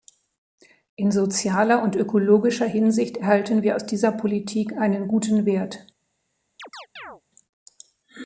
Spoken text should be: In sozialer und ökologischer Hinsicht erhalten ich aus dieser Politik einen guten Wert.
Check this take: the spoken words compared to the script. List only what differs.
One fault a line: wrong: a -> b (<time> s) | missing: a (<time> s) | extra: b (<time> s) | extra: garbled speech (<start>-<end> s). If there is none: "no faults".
wrong: ich -> wir (3.6 s)